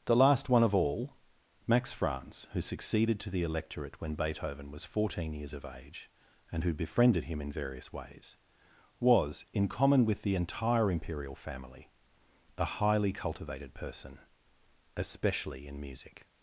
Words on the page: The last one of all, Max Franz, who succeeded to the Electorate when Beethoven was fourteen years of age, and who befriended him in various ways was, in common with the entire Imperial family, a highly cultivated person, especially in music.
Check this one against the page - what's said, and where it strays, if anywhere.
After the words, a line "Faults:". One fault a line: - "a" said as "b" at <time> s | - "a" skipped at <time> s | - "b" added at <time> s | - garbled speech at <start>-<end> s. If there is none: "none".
The last one of all, Max Franz, who succeeded to the Electorate when Beethoven was fourteen years of age, and who befriended him in various ways was, in common with the entire Imperial family, a highly cultivated person, especially in music.
Faults:
none